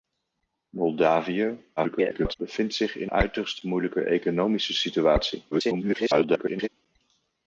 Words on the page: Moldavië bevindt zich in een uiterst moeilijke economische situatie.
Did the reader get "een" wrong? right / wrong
wrong